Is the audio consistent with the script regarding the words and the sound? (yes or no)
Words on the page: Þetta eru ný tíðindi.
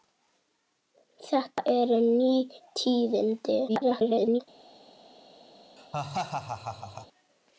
no